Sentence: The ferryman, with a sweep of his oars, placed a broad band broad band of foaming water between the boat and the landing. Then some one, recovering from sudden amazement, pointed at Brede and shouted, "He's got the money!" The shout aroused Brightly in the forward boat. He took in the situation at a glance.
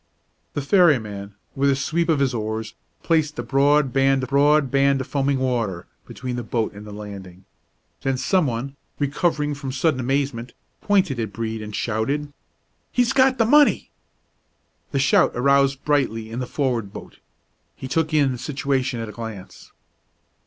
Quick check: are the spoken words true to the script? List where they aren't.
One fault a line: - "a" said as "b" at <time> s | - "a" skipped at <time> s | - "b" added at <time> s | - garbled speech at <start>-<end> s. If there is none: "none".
none